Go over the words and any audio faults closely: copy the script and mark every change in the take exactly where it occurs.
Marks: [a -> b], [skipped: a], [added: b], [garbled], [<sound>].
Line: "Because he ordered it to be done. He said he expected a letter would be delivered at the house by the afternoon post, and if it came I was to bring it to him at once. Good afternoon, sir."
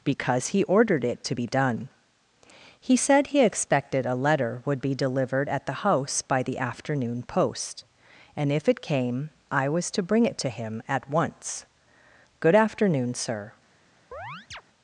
"Because he ordered it to be done. He said he expected a letter would be delivered at the house by the afternoon post, and if it came I was to bring it to him at once. Good afternoon, sir." [chirp]